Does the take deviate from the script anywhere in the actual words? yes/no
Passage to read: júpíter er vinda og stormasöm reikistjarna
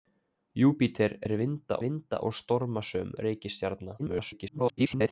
yes